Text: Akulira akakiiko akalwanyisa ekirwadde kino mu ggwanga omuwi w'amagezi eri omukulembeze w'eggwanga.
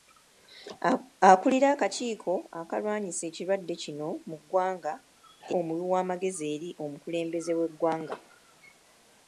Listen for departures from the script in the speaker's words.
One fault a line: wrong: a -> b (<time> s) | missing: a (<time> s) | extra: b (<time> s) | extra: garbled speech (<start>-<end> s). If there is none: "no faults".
no faults